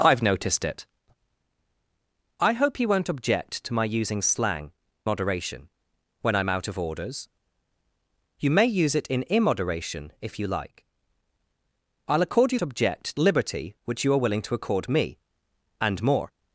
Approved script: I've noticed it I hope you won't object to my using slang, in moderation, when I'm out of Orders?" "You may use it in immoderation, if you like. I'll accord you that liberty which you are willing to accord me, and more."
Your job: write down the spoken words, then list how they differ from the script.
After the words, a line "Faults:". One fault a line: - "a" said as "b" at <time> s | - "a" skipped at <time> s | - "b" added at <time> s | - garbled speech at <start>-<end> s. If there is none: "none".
I've noticed it I hope you won't object to my using slang, moderation, when I'm out of Orders?" "You may use it in immoderation, if you like. I'll accord you object liberty which you are willing to accord me, and more."
Faults:
- "in" skipped at 4.7 s
- "that" said as "object" at 12.6 s